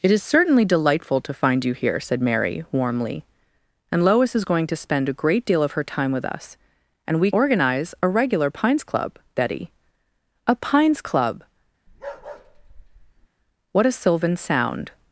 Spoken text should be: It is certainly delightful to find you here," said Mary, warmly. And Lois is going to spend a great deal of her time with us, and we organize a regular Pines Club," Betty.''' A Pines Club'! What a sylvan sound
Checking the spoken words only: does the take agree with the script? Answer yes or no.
yes